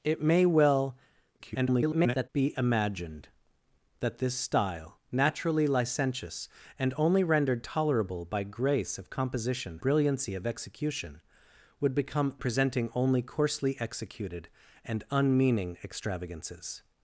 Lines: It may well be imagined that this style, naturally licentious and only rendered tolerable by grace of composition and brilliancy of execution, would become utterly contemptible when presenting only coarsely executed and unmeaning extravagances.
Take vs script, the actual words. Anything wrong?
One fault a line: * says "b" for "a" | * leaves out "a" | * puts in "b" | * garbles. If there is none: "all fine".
* garbles
* leaves out "and"
* leaves out "utterly contemptible when"